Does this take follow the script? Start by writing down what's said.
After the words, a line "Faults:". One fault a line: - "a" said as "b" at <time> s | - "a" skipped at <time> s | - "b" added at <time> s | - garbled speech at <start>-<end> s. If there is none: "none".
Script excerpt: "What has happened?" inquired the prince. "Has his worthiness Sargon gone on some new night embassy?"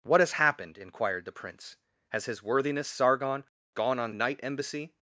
"What has happened?" inquired the prince. "Has his worthiness Sargon gone on night embassy?"
Faults:
- "some new" skipped at 4.2 s